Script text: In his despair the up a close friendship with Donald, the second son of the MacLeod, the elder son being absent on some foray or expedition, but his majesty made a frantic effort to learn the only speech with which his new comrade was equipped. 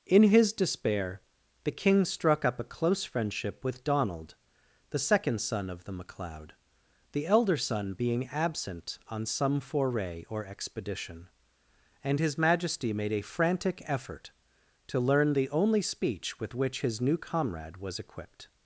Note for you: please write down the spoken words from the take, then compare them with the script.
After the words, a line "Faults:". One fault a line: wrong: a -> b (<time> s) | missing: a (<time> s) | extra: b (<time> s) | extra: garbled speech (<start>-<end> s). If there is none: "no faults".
In his despair the king struck up a close friendship with Donald, the second son of the MacLeod, the elder son being absent on some foray or expedition, and his majesty made a frantic effort to learn the only speech with which his new comrade was equipped.
Faults:
extra: king struck (1.7 s)
wrong: but -> and (12.0 s)